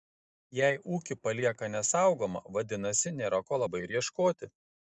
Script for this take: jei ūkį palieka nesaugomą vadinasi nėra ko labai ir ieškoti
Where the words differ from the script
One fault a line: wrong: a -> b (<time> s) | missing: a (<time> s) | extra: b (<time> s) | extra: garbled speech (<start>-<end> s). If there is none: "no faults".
no faults